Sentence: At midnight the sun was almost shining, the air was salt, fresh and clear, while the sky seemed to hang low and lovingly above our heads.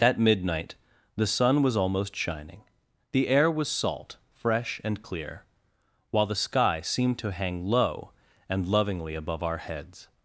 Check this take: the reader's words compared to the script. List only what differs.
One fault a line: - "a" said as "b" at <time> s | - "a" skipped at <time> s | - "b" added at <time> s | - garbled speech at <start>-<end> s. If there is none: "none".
none